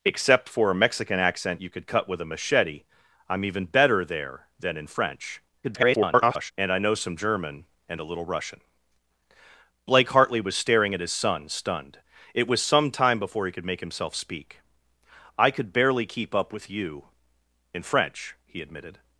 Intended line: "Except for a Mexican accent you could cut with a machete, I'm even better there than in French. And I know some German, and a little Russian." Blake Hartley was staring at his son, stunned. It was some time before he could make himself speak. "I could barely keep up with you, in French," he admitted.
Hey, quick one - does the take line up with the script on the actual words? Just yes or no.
no